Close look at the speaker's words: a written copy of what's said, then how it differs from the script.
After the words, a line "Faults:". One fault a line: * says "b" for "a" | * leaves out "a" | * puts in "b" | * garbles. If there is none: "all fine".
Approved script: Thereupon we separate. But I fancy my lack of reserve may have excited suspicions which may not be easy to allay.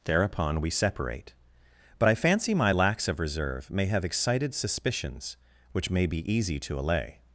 Thereupon we separate. But I fancy my lacks of reserve may have excited suspicions which may be easy to allay.
Faults:
* says "lacks" for "lack"
* leaves out "not"